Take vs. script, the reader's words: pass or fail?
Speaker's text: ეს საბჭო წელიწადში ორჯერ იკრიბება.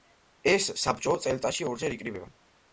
pass